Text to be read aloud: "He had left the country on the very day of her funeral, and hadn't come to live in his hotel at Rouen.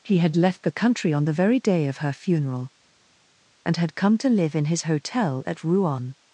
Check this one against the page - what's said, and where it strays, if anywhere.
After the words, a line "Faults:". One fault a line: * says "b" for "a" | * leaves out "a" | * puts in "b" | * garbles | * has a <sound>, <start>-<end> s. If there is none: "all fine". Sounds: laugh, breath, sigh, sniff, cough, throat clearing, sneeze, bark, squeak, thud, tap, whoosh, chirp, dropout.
"He had left the country on the very day of her funeral, and had come to live in his hotel at Rouen.
Faults:
* says "had" for "hadn't"